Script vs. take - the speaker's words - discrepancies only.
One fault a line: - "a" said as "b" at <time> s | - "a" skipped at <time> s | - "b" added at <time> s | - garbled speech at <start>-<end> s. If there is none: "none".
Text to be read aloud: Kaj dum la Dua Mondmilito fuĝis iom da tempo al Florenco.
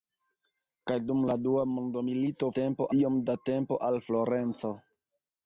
- "fuĝis" said as "tempo" at 2.6 s